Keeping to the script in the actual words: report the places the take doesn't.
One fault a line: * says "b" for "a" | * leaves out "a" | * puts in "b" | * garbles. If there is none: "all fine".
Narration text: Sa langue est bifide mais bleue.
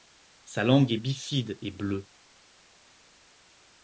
* says "et" for "mais"